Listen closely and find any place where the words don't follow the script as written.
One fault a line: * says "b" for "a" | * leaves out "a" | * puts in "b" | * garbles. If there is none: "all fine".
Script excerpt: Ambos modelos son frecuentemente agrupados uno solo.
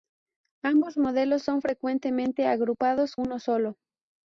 all fine